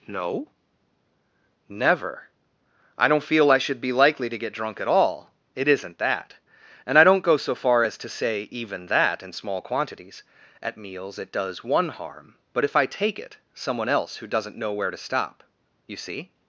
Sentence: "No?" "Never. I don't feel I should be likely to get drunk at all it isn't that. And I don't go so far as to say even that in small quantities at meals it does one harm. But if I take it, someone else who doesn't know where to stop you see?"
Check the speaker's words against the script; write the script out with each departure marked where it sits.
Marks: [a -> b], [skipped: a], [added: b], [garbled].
"No?" "Never. I don't feel I should be likely to get drunk at all it isn't that. And I don't go so far as to say even that in small quantities at meals it does one harm. But if I take it, someone else who doesn't know where to stop you see?"